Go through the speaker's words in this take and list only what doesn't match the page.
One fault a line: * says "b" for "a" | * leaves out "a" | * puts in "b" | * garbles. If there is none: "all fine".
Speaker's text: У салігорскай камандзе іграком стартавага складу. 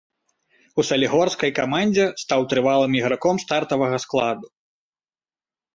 * puts in "стаў трывалым"